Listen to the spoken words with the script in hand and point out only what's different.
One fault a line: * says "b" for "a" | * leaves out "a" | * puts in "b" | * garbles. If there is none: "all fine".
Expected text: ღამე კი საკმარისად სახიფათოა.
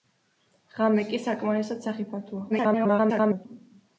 * garbles